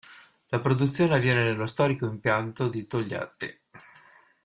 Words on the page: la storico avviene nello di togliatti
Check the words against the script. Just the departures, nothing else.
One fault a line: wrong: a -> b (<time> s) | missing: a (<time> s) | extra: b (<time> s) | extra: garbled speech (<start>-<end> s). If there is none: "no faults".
wrong: storico -> produzione (0.6 s)
extra: storico impianto (1.7 s)